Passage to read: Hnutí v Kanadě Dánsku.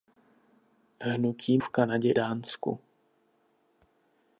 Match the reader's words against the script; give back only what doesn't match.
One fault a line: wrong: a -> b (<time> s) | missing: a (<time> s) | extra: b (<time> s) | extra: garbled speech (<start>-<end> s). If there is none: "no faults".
no faults